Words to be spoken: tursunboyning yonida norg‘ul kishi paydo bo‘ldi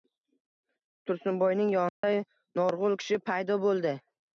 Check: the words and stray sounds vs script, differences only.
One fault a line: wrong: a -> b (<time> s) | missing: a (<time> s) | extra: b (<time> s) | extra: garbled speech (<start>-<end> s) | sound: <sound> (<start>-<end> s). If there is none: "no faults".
sound: dropout (1.9-2.0 s)